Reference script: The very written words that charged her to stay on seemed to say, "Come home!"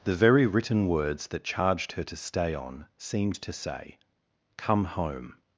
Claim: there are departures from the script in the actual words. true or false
false